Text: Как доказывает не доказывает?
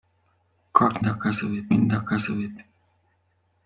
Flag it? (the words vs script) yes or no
no